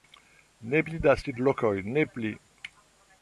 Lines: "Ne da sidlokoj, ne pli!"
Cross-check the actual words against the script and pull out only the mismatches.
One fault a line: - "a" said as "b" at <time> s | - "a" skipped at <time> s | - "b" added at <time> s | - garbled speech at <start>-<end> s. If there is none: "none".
- "pli" added at 0.8 s